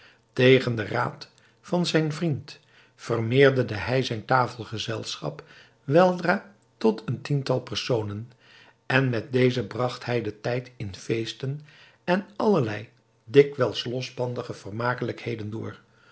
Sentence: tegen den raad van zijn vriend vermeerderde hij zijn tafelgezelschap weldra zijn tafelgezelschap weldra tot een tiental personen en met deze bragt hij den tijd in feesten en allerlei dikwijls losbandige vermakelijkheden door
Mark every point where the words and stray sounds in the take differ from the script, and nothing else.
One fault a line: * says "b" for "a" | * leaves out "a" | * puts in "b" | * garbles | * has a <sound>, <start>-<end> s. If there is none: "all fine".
* leaves out "zijn tafelgezelschap weldra"